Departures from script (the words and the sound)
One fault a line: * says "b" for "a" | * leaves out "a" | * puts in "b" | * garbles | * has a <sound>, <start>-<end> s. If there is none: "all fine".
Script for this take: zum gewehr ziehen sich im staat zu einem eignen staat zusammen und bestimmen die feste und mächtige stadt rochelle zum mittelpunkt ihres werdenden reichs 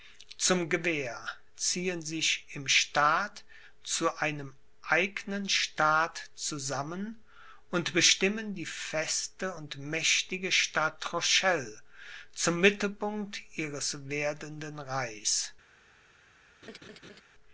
* has a laugh, 16.6-17.2 s